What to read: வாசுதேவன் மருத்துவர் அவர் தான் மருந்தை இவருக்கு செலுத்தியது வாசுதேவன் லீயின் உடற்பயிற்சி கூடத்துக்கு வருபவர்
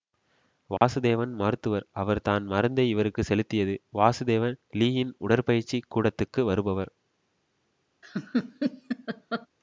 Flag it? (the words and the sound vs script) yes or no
yes